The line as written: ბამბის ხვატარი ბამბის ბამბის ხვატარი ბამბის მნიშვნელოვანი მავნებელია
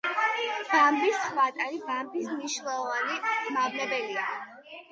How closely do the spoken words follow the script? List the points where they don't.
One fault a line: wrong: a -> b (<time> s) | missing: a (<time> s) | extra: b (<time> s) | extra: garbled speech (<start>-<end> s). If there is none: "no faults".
missing: ბამბის ხვატარი ბამბის (2.3 s)